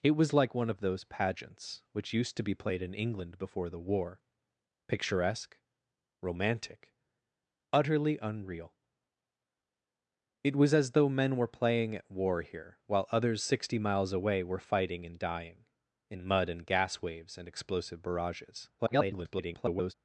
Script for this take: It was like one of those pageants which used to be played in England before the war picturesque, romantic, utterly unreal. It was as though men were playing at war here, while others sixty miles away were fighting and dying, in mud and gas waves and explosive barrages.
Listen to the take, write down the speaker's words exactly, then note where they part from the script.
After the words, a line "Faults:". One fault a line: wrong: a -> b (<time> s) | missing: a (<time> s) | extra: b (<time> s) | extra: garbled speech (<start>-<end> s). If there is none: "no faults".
It was like one of those pageants which used to be played in England before the war picturesque, romantic, utterly unreal. It was as though men were playing at war here, while others sixty miles away were fighting and dying, in mud and gas waves and explosive barrages. [garbled]
Faults:
extra: garbled speech (18.8-19.9 s)